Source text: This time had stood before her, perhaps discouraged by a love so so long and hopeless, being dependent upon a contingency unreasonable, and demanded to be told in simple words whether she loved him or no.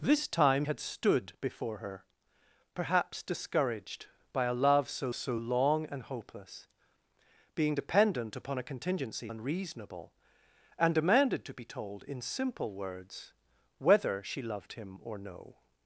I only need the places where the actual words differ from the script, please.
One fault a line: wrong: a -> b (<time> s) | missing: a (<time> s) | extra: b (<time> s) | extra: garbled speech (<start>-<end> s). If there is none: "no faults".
no faults